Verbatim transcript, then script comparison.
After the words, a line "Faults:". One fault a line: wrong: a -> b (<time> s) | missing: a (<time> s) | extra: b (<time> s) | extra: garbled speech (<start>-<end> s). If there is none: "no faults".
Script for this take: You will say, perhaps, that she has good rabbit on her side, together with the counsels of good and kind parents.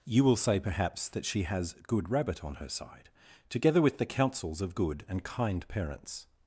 You will say, perhaps, that she has good rabbit on her side, together with the counsels of good and kind parents.
Faults:
no faults